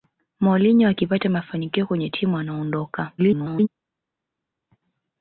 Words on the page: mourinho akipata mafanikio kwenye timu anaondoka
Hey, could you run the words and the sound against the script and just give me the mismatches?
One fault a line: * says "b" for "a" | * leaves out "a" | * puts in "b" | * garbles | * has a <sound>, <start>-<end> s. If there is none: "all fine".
* garbles